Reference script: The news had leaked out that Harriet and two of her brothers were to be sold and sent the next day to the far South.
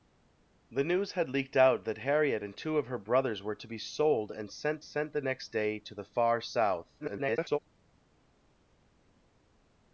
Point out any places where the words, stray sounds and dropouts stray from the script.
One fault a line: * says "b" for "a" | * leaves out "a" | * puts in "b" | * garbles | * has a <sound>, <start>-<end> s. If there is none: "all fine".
* puts in "sent"
* garbles